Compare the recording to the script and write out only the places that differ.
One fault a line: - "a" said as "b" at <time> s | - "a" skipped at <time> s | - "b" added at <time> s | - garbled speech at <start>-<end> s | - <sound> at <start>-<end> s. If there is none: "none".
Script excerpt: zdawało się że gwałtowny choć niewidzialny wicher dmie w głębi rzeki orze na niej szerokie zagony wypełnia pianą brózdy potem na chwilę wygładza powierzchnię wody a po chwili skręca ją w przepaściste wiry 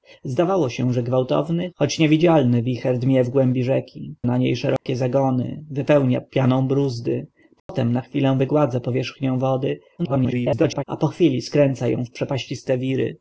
- "orze" skipped at 4.2 s
- dropout at 4.8-4.9 s
- dropout at 7.6-7.7 s
- garbled speech at 10.0-10.8 s